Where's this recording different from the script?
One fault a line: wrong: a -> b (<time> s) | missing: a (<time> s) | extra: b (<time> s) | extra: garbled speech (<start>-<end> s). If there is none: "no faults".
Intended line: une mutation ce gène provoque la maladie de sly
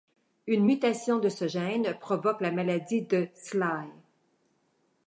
extra: de (1.2 s)